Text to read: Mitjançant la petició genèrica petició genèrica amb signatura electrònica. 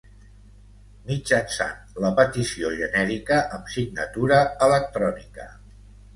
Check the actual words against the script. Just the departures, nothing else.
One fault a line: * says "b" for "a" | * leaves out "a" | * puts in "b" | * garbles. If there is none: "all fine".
* leaves out "petició genèrica"